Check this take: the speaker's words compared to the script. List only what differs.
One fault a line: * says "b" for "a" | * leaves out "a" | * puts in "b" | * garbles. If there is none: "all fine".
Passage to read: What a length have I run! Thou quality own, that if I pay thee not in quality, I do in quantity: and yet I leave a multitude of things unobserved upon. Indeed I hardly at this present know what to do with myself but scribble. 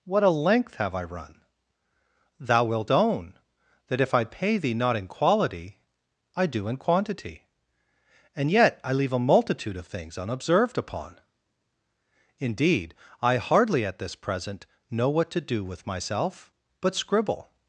* says "wilt" for "quality"